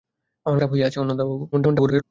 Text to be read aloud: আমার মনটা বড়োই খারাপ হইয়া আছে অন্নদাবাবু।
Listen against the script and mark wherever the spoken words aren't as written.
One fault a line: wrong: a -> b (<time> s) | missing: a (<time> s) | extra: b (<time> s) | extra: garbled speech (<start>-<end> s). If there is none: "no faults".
missing: মনটা বড়োই (0.6 s)
extra: garbled speech (1.5-2.0 s)